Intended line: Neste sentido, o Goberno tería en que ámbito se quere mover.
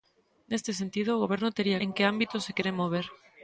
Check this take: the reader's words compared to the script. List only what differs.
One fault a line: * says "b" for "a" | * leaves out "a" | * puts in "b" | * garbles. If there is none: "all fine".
all fine